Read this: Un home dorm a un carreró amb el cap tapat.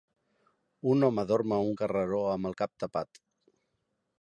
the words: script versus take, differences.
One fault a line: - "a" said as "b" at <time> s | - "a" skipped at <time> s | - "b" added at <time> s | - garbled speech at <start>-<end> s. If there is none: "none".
none